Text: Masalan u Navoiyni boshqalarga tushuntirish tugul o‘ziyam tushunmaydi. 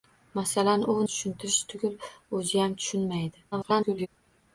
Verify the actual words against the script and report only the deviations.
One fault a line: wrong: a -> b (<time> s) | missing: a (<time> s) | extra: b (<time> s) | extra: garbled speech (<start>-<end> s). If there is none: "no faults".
missing: Navoiyni boshqalarga (0.9 s)
extra: garbled speech (3.5-4.1 s)